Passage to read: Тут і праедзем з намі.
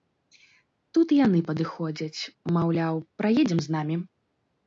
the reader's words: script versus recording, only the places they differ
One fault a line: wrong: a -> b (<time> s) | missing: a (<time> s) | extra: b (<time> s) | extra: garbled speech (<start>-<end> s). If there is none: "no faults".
extra: яны падыходзяць маўляў (1.3 s)